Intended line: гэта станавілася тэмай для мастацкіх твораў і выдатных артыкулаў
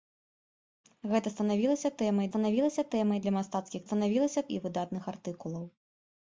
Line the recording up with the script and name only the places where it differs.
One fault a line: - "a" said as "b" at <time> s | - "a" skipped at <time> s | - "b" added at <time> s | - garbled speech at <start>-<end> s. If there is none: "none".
- "станавілася тэмай" added at 2.3 s
- "твораў" said as "станавілася" at 3.9 s